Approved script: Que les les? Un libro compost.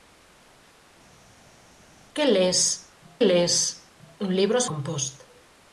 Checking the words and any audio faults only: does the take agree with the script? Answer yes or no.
yes